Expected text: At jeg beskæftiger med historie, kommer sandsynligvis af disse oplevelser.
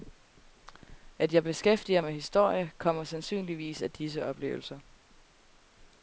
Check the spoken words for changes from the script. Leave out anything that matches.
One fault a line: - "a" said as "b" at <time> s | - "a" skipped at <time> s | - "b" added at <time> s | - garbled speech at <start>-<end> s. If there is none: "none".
none